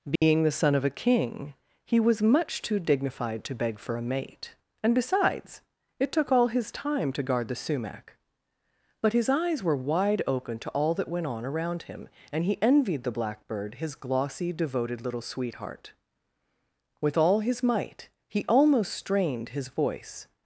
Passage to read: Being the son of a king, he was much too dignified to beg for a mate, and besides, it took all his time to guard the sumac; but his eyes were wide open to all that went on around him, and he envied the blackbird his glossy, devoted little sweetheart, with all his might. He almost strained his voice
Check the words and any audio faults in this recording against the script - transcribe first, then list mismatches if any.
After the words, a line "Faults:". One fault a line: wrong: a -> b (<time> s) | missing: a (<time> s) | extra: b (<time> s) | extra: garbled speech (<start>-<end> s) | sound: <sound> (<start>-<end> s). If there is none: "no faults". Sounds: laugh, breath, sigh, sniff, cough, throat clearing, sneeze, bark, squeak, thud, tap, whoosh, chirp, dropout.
Being the son of a king, he was much too dignified to beg for a mate, and besides, it took all his time to guard the sumac; but his eyes were wide open to all that went on around him, and he envied the blackbird his glossy, devoted little sweetheart, with all his might. He almost strained his voice
Faults:
sound: dropout (0.2-0.2 s)